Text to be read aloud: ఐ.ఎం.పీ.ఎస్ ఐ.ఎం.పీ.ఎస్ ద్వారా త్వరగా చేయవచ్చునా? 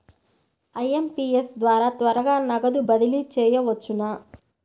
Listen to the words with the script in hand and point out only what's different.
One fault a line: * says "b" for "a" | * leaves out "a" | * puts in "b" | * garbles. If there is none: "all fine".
* leaves out "ఐ.ఎం.పీ.ఎస్"
* puts in "నగదు బదిలీ"